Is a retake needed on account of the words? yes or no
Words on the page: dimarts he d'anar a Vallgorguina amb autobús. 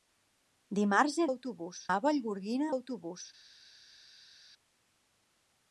yes